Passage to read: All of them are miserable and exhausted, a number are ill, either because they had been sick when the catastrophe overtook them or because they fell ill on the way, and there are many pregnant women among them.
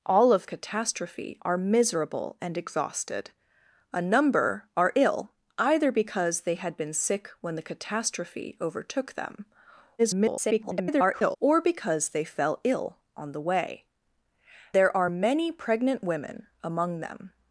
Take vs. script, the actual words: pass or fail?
fail